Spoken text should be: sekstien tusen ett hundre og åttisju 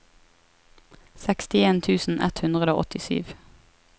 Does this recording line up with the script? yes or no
yes